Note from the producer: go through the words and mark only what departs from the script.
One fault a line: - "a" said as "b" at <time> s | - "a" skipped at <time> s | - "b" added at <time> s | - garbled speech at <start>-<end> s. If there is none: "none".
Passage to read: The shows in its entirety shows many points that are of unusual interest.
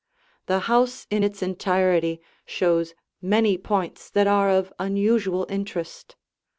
- "shows" said as "house" at 0.6 s